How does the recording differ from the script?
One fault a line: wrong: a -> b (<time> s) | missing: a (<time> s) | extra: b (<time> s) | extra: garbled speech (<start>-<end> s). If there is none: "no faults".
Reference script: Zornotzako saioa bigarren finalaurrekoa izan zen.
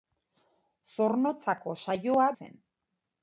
missing: bigarren finalaurrekoa izan (2.3 s)